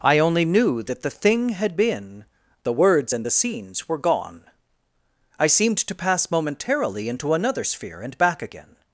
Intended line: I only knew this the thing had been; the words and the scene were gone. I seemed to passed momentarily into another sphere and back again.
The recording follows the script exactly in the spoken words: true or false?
false